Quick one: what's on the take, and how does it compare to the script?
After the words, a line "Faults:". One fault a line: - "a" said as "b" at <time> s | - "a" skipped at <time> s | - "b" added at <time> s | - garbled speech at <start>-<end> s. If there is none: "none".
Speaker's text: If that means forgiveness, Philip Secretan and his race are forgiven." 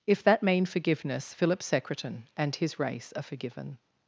If that mean forgiveness, Philip Secretan and his race are forgiven."
Faults:
- "means" said as "mean" at 0.4 s